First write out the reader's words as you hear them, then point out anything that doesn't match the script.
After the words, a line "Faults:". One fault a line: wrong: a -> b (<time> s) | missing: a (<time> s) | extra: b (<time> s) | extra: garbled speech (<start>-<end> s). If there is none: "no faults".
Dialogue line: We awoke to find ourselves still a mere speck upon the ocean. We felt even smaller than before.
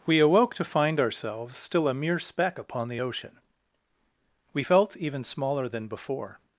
We awoke to find ourselves still a mere speck upon the ocean. We felt even smaller than before.
Faults:
no faults